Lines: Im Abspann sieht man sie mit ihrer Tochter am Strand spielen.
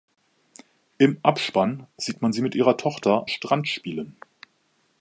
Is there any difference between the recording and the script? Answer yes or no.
yes